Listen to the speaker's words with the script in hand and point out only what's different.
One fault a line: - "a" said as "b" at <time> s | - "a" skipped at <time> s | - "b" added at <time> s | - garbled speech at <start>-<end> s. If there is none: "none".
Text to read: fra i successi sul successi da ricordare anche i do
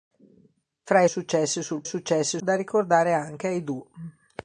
none